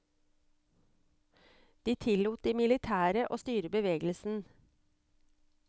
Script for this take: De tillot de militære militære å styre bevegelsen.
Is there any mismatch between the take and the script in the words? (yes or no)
yes